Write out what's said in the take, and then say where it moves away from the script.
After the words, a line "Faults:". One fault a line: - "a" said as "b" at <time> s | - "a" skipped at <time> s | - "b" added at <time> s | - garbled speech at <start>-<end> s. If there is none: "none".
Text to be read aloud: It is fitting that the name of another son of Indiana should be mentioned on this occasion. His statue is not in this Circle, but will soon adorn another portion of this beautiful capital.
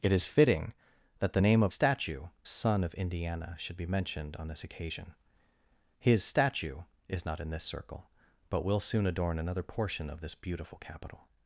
It is fitting that the name of statue son of Indiana should be mentioned on this occasion. His statue is not in this Circle, but will soon adorn another portion of this beautiful capital.
Faults:
- "another" said as "statue" at 1.7 s